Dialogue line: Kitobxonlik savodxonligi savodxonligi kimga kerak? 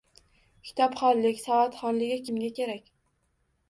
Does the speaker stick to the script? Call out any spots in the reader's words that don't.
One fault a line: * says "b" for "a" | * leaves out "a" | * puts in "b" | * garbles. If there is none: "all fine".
* leaves out "savodxonligi"